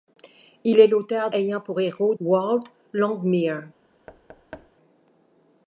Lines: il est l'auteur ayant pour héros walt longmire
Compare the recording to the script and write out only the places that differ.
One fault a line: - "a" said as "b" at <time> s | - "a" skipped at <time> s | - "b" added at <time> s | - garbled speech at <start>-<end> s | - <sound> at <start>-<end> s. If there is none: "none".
- thud at 4.1-4.7 s